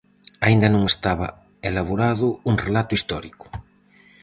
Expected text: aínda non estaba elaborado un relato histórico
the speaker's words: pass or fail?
pass